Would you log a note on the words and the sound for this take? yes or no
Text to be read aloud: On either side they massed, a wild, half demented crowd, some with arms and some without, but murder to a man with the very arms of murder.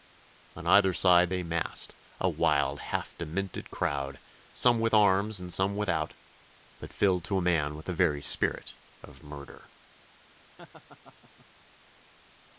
yes